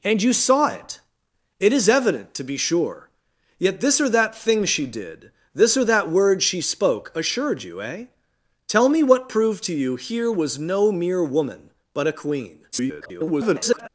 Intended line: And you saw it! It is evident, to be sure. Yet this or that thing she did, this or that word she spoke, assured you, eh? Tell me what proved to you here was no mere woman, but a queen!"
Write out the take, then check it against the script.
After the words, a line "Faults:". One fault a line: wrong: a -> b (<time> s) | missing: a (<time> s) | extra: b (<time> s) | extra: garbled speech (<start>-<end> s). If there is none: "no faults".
And you saw it! It is evident, to be sure. Yet this or that thing she did, this or that word she spoke, assured you, eh? Tell me what proved to you here was no mere woman, but a queen!" [garbled]
Faults:
extra: garbled speech (12.7-13.9 s)